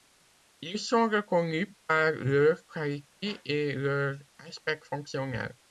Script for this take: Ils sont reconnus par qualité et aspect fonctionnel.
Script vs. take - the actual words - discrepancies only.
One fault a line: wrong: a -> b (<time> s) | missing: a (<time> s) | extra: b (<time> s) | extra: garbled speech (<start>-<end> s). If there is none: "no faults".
extra: leur (2.1 s)
extra: leur (3.7 s)